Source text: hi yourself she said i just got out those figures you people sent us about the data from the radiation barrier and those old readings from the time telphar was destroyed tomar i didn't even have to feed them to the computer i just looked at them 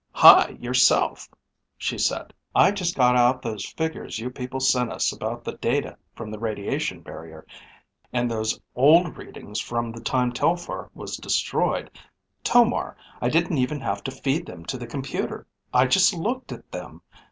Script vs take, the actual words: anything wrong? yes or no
no